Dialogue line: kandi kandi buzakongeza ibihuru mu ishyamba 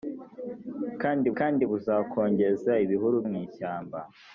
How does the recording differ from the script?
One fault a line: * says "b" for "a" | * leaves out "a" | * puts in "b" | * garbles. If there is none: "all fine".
all fine